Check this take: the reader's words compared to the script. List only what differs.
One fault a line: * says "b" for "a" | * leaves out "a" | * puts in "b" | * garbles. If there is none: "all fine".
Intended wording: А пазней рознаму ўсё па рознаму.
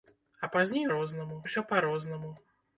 all fine